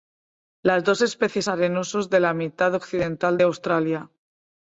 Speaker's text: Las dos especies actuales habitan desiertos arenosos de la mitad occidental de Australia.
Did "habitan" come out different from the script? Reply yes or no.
yes